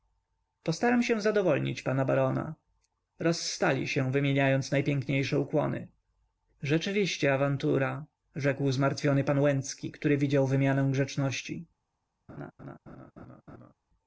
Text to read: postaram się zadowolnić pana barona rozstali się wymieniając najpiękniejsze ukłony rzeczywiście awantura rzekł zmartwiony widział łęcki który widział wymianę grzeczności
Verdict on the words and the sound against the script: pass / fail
fail